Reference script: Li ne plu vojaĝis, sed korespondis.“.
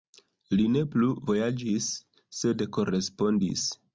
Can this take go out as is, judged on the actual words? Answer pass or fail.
pass